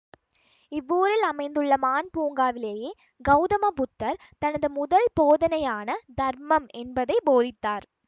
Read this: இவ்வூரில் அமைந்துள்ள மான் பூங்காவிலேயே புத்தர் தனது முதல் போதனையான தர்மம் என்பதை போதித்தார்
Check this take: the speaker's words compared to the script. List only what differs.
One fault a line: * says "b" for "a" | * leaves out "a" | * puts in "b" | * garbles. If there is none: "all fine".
* puts in "கௌதம"